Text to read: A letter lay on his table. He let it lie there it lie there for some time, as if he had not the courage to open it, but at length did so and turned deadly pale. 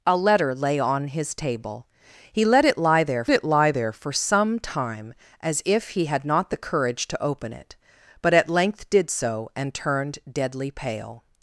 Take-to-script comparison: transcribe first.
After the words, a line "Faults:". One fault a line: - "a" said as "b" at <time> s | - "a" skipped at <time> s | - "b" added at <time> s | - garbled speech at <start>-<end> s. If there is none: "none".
A letter lay on his table. He let it lie there it lie there for some time, as if he had not the courage to open it, but at length did so and turned deadly pale.
Faults:
none